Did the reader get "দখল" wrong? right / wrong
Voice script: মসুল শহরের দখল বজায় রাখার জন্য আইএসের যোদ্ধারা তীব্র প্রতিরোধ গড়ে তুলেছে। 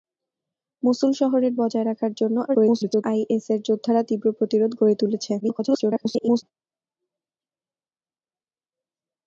wrong